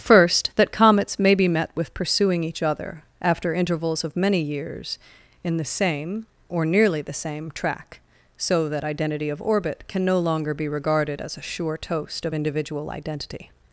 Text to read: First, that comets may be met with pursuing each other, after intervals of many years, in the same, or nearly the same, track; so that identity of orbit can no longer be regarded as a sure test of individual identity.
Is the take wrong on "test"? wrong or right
wrong